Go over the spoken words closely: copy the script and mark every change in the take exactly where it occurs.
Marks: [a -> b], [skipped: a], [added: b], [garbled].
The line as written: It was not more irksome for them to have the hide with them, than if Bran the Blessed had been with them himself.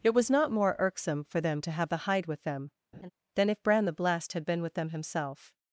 It was not more irksome for them to have the hide with them, than if Bran the Blessed had been with them himself.